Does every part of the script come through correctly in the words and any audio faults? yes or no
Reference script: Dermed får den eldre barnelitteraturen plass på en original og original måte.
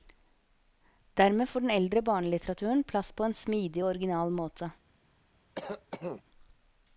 no